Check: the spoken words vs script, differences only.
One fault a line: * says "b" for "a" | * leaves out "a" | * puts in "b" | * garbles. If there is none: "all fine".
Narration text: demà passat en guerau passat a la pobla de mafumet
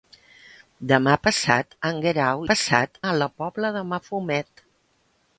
all fine